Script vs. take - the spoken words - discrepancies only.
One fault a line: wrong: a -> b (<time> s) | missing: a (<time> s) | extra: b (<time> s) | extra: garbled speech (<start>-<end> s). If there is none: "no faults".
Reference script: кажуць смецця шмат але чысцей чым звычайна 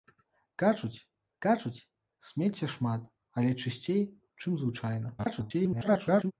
extra: кажуць (1.4 s)
extra: garbled speech (5.2-6.3 s)